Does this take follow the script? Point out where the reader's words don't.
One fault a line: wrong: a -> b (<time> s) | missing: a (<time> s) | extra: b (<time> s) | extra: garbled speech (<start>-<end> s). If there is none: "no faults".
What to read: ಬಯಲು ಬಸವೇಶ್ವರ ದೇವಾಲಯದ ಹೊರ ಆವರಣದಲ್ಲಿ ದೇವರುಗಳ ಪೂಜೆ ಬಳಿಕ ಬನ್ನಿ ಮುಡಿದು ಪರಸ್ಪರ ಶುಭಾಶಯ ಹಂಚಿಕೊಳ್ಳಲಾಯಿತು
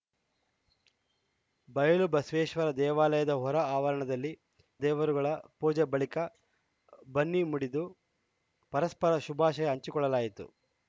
no faults